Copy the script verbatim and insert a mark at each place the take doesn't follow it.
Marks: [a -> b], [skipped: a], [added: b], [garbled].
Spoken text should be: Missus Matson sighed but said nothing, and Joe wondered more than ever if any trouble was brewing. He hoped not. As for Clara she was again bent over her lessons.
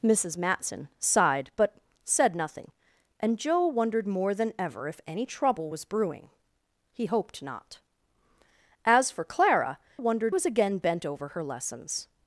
Missus Matson sighed but said nothing, and Joe wondered more than ever if any trouble was brewing. He hoped not. As for Clara [she -> wondered] was again bent over her lessons.